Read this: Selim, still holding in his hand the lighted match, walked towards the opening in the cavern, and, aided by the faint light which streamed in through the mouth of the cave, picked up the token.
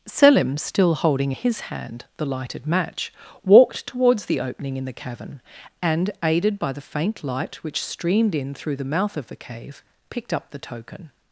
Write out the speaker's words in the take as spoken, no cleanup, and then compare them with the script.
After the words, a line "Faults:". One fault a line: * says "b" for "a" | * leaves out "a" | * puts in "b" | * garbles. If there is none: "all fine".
Selim, still holding his hand the lighted match, walked towards the opening in the cavern, and, aided by the faint light which streamed in through the mouth of the cave, picked up the token.
Faults:
* leaves out "in"